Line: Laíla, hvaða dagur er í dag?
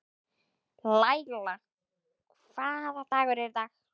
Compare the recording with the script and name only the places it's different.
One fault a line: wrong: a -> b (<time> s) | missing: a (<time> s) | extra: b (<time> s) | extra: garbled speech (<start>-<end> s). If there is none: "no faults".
no faults